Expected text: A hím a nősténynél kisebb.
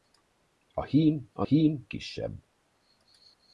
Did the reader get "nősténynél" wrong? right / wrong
wrong